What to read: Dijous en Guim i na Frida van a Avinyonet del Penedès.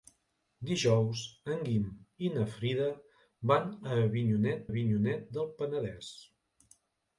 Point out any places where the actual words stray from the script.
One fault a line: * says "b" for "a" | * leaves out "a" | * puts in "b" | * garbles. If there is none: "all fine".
* puts in "Avinyonet"